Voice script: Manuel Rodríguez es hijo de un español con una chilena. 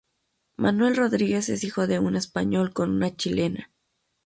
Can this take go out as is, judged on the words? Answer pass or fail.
pass